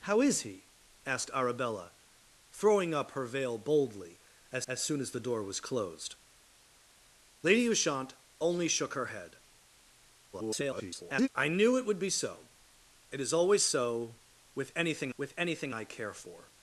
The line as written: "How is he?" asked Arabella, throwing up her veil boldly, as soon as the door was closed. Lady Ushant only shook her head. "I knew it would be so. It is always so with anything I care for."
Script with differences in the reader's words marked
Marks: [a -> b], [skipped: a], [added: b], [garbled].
"How is he?" asked Arabella, throwing up her veil boldly, as [added: as] soon as the door was closed. Lady Ushant only shook her head. [garbled] "I knew it would be so. It is always so with anything [added: with anything] I care for."